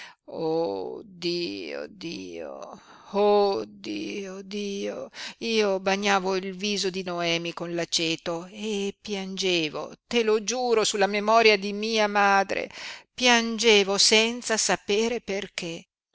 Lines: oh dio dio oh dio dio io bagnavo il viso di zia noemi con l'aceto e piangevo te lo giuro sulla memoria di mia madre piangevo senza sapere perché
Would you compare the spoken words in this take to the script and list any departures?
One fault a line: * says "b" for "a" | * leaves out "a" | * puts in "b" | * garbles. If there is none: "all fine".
* leaves out "zia"